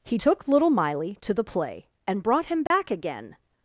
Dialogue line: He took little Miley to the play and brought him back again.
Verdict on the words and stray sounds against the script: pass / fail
fail